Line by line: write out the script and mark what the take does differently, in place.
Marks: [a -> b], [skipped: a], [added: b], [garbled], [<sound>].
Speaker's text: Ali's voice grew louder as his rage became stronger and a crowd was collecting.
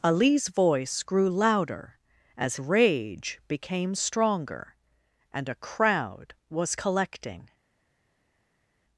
Ali's voice grew louder as [skipped: his] rage became stronger and a crowd was collecting.